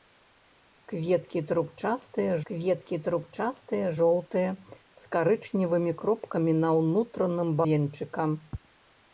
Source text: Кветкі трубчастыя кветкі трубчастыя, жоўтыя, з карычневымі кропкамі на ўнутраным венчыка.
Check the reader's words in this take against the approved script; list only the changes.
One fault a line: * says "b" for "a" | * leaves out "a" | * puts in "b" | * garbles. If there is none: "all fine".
all fine